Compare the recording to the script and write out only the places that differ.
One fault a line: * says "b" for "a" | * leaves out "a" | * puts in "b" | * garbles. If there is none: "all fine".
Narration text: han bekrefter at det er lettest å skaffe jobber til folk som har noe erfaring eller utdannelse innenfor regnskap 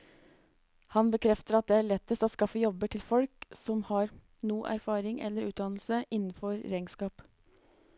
all fine